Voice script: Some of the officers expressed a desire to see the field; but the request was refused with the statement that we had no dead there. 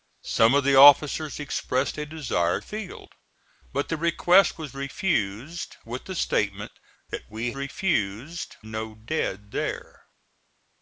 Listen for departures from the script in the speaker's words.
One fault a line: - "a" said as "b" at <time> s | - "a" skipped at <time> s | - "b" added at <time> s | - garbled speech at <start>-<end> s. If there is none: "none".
- "to see the" skipped at 2.6 s
- "had" said as "refused" at 7.5 s